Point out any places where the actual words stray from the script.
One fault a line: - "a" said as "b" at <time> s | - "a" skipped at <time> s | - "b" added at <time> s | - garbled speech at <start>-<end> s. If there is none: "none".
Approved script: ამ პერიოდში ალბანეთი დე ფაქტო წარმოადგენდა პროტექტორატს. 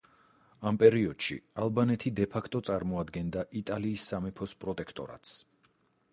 - "იტალიის სამეფოს" added at 3.6 s